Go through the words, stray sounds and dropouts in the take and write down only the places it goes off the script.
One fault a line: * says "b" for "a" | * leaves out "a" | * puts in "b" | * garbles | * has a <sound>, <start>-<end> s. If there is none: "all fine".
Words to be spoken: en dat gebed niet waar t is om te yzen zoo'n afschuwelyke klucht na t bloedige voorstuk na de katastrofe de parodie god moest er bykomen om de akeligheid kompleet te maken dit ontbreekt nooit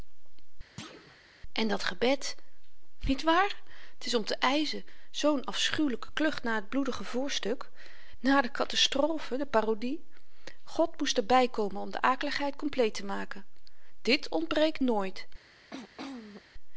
* has a thud, 0.8-1.2 s
* has a throat clearing, 15.7-16.4 s